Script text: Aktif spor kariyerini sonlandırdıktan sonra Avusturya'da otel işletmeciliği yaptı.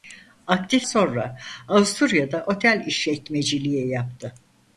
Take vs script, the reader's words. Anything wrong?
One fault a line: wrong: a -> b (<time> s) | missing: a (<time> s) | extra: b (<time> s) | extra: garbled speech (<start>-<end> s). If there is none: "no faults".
missing: spor kariyerini sonlandırdıktan (0.9 s)